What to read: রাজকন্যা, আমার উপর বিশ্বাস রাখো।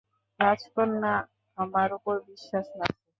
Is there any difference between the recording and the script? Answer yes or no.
no